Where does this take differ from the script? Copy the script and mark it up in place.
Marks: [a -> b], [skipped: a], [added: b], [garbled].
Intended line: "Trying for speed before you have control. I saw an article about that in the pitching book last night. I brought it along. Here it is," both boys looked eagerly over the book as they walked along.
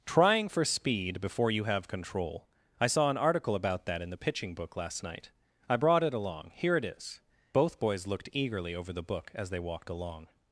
"Trying for speed before you have control. I saw an article about that in the pitching book last night. I brought it along. Here it is," both boys looked eagerly over the book as they walked along.